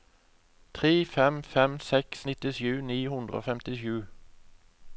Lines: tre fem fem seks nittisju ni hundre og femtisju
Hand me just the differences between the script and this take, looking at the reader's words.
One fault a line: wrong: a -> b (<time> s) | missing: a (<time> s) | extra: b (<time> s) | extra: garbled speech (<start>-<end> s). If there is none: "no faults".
no faults